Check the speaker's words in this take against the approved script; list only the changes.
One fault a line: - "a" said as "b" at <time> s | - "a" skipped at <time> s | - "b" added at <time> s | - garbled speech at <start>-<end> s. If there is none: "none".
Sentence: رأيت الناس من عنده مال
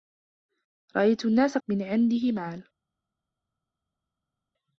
none